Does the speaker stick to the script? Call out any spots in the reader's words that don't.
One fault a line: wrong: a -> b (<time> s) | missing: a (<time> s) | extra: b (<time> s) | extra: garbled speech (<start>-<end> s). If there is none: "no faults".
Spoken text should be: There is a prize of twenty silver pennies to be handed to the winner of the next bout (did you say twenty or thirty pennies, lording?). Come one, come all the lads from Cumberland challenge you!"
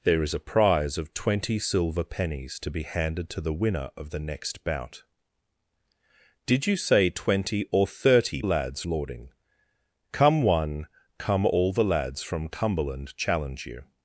wrong: pennies -> lads (8.4 s)